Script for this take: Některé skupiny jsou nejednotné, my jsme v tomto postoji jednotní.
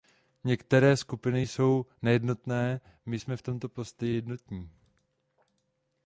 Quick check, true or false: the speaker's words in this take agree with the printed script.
true